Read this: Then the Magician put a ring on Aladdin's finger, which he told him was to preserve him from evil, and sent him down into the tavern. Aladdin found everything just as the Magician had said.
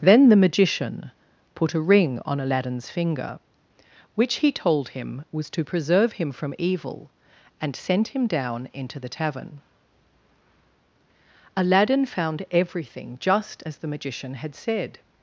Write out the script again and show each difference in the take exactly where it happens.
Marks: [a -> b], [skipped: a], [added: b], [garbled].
Then the Magician put a ring on Aladdin's finger, which he told him was to preserve him from evil, and sent him down into the tavern. Aladdin found everything just as the Magician had said.